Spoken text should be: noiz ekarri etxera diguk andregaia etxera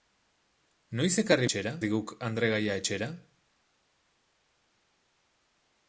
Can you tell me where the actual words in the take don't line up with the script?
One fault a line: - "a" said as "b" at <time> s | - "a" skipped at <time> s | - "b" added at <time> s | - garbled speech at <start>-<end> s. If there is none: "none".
none